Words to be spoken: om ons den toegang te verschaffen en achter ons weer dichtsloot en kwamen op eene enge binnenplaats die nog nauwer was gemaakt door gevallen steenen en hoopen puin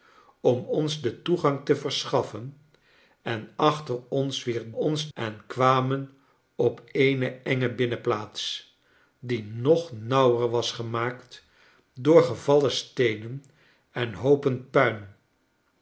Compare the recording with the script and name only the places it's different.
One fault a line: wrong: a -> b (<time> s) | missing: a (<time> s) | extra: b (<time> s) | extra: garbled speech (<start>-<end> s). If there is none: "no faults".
wrong: dichtsloot -> ons (4.7 s)